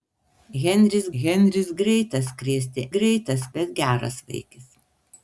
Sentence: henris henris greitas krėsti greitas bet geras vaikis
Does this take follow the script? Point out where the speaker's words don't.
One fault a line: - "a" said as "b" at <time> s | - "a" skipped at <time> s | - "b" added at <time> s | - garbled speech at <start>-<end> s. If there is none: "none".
none